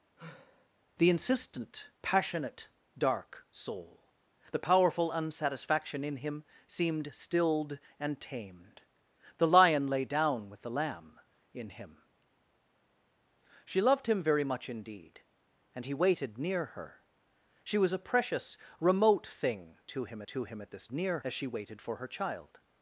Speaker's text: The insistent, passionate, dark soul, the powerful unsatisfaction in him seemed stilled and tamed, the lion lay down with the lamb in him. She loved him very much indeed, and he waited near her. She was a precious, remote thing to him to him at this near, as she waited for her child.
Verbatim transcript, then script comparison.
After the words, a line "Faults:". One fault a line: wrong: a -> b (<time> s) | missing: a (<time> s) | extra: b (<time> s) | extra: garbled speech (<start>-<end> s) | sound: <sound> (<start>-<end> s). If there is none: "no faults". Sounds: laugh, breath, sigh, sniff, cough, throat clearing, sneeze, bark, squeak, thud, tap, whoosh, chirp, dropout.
The insistent, passionate, dark soul, the powerful unsatisfaction in him seemed stilled and tamed, the lion lay down with the lamb in him. She loved him very much indeed, and he waited near her. She was a precious, remote thing to him to him at this near, as she waited for her child.
Faults:
sound: sigh (0.2-0.7 s)